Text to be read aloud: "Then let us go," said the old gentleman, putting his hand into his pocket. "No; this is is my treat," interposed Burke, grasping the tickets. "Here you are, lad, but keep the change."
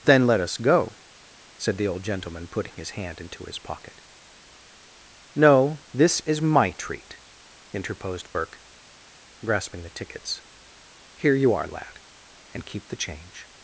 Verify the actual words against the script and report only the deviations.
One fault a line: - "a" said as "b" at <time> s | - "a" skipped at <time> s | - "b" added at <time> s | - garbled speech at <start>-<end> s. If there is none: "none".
- "is" skipped at 6.4 s
- "but" said as "and" at 12.5 s